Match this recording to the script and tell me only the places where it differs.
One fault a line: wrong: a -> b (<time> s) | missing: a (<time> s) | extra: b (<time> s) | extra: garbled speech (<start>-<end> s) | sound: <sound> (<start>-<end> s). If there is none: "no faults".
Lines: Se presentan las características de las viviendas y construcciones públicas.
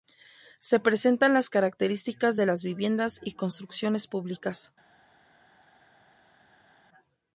no faults